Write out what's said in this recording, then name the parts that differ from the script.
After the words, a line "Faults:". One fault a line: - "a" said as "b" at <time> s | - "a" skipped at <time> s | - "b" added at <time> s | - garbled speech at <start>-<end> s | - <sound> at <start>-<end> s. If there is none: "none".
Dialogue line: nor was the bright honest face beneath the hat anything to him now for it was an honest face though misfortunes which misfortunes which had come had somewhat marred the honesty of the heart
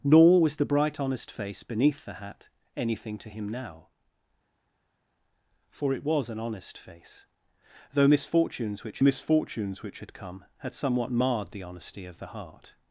nor was the bright honest face beneath the hat anything to him now for it was an honest face though misfortunes which misfortunes which had come had somewhat marred the honesty of the heart
Faults:
none